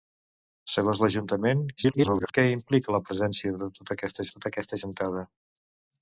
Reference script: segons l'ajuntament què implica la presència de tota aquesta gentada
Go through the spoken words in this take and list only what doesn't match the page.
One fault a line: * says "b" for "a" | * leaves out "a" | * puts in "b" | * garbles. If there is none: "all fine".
* garbles
* puts in "tota aquesta"